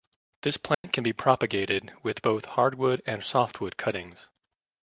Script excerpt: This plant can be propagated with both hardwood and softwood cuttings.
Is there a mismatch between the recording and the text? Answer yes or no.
no